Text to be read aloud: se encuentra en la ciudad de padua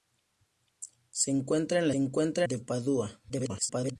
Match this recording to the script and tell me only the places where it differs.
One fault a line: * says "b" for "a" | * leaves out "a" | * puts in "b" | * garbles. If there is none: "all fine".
* says "encuentra" for "ciudad"
* garbles